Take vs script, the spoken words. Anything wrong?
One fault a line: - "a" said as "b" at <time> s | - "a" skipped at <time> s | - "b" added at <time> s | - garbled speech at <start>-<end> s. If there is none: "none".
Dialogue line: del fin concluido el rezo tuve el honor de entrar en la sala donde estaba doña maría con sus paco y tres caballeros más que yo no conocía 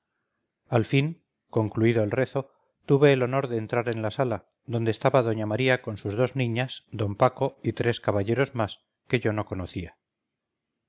- "del" said as "al" at 0.7 s
- "dos niñas d" added at 6.2 s